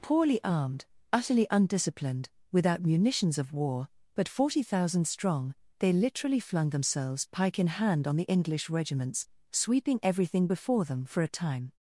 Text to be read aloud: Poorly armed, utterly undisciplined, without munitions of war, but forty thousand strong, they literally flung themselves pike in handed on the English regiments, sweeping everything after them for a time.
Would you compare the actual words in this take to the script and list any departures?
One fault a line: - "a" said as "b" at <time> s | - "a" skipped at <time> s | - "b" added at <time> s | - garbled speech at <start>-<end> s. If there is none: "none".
- "handed" said as "hand" at 7.7 s
- "after" said as "before" at 10.5 s